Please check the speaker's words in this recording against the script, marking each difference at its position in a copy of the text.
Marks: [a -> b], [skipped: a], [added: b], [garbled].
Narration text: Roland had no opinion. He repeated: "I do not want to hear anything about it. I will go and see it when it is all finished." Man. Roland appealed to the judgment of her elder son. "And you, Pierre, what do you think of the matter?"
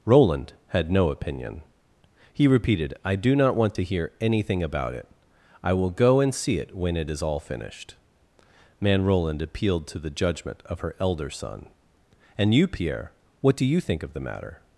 Roland had no opinion. He repeated: "I do not want to hear anything about it. I will go and see it when it is all finished." Man. Roland appealed to the judgment of her elder son. "And you, Pierre, what do you think of the matter?"